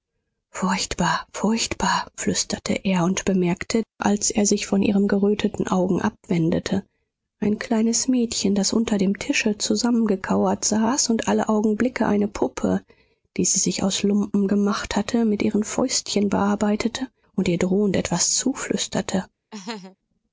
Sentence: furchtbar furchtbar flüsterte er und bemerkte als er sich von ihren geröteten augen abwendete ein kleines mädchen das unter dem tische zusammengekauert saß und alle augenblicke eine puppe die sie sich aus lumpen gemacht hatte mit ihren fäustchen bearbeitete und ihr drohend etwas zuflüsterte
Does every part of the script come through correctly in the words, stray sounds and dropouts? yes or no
no